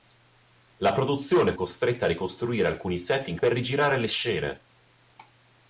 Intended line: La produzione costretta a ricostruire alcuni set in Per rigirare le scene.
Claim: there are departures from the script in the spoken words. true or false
false